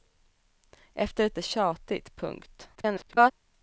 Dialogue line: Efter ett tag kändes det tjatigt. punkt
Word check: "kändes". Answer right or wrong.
wrong